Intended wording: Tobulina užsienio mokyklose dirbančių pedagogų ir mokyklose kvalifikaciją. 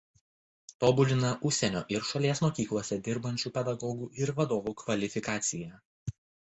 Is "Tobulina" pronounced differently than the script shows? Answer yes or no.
no